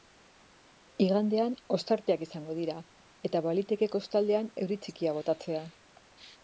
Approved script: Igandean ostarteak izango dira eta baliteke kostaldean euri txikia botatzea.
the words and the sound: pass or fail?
pass